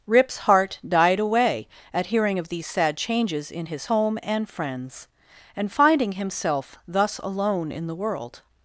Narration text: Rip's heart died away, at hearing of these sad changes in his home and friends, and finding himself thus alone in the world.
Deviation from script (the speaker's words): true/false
false